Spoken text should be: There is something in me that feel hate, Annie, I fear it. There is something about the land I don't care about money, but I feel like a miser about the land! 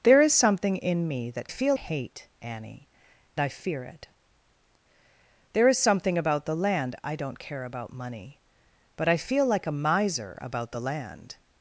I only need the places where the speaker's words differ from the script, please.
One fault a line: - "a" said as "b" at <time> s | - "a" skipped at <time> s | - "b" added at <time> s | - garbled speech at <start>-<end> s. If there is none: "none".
none